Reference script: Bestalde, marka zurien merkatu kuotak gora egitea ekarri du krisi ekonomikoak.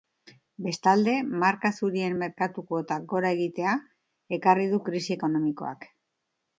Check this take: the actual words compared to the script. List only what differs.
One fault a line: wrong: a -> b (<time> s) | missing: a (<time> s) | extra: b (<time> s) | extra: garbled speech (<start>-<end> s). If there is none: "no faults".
no faults